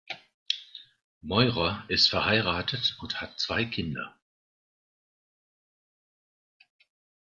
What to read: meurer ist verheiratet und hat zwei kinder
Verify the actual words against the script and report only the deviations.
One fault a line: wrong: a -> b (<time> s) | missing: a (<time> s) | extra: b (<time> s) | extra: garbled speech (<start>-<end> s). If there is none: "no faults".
no faults